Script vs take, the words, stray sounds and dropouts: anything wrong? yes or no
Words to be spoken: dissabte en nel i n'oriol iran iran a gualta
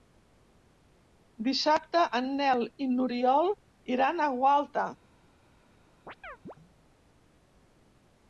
yes